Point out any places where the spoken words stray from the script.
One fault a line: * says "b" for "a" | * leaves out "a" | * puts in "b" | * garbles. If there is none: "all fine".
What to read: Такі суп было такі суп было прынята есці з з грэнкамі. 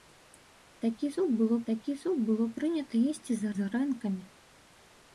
all fine